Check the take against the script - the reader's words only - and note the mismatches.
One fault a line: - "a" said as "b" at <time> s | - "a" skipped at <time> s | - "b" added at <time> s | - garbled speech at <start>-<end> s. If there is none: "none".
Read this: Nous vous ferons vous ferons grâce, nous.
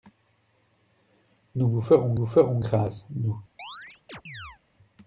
none